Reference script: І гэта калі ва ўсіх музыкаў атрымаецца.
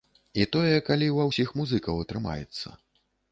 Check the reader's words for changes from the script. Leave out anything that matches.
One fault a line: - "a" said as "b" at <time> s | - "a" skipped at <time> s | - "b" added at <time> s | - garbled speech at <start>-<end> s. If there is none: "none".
- "гэта" said as "тое" at 0.5 s